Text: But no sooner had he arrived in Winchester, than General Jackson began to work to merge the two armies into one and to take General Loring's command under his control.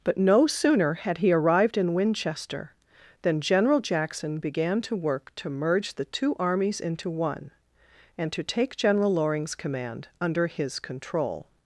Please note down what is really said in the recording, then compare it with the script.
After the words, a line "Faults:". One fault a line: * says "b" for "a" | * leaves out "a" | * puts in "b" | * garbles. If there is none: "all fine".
But no sooner had he arrived in Winchester, than General Jackson began to work to merge the two armies into one and to take General Loring's command under his control.
Faults:
all fine